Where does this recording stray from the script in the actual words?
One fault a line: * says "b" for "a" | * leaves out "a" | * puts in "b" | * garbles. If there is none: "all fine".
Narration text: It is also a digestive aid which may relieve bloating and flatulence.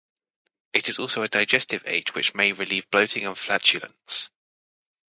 all fine